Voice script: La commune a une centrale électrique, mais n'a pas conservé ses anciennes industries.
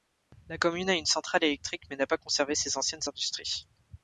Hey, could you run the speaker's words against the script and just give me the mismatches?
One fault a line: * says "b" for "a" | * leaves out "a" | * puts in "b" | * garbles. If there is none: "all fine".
all fine